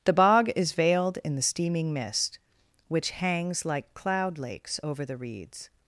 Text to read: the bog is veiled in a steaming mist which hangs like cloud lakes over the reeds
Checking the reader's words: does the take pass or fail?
fail